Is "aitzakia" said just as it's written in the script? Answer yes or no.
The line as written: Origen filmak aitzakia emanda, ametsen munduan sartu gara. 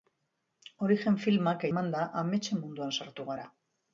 no